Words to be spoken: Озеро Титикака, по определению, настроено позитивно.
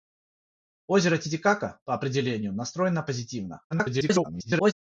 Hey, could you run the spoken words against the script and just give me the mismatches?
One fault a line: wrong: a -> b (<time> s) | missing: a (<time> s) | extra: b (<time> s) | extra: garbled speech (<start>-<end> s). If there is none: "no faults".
extra: garbled speech (3.7-4.7 s)